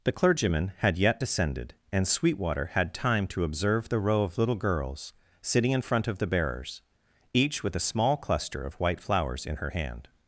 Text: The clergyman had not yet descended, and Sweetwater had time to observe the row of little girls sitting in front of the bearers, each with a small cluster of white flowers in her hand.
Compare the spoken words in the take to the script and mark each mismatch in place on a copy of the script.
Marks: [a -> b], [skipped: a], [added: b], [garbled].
The clergyman had [skipped: not] yet descended, and Sweetwater had time to observe the row of little girls sitting in front of the bearers, each with a small cluster of white flowers in her hand.